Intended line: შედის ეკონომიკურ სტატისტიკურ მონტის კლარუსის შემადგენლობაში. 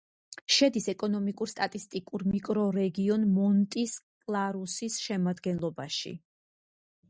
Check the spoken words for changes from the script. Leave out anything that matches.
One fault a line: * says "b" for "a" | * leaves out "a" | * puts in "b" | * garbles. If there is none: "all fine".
* puts in "მიკრორეგიონ"